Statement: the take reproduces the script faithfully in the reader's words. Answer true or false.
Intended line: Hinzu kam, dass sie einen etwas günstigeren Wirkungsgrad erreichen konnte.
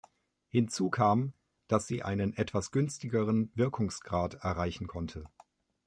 true